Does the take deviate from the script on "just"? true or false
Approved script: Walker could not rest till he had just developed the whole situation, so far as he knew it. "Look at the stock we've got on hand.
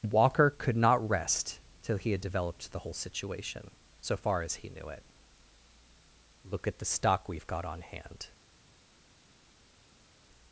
true